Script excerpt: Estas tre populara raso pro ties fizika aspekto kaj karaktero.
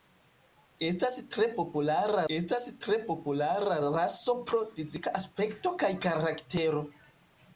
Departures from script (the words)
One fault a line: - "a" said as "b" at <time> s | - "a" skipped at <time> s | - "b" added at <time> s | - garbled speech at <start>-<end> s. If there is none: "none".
- "estas tre populara" added at 2.4 s
- "ties" skipped at 4.6 s